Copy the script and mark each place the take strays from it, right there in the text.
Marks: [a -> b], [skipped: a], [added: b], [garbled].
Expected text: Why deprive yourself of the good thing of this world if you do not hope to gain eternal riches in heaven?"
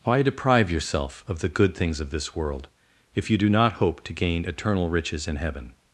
Why deprive yourself of the good [thing -> things] of this world if you do not hope to gain eternal riches in heaven?"